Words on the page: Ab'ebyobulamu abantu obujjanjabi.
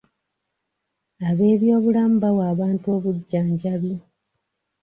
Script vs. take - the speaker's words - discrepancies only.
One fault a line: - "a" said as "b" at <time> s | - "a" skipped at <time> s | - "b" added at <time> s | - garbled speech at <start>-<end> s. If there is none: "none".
- "bawa" added at 2.2 s